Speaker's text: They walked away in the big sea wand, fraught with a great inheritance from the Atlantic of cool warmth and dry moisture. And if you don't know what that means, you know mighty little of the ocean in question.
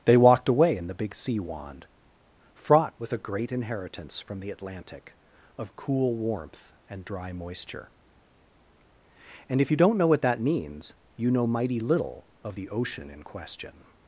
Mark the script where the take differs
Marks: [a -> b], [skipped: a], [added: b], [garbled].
They walked away in the big sea wand, fraught with a great inheritance from the Atlantic of cool warmth and dry moisture. And if you don't know what that means, you know mighty little of the ocean in question.